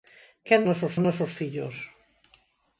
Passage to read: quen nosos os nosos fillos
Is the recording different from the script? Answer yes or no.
no